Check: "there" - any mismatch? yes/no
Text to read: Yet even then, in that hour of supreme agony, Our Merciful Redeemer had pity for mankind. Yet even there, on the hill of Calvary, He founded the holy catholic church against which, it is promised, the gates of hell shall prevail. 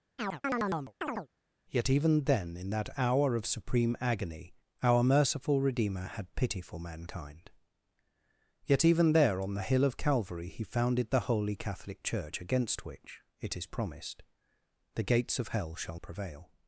no